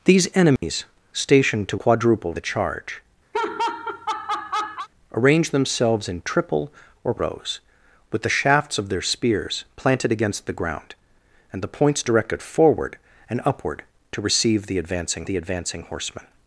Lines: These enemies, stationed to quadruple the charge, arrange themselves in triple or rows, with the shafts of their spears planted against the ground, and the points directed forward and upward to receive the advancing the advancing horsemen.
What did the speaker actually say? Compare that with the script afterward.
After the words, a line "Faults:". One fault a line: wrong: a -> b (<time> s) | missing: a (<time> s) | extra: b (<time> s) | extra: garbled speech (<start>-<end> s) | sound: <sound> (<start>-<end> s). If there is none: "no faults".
These enemies, stationed to quadruple the charge, arrange themselves in triple or rows, with the shafts of their spears planted against the ground, and the points directed forward and upward to receive the advancing the advancing horsemen.
Faults:
sound: dropout (0.6-0.6 s)
sound: laugh (3.3-4.9 s)